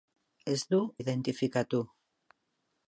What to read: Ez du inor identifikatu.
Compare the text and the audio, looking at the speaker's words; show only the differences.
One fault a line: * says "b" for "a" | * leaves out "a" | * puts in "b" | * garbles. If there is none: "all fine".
* leaves out "inor"